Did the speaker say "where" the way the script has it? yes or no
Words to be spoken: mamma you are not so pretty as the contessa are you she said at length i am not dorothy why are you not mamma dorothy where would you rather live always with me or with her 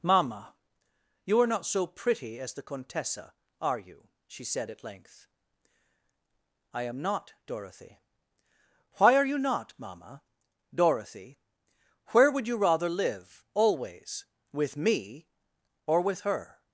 yes